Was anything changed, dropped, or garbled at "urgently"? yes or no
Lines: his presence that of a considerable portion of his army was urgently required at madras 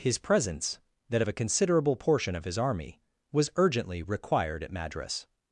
no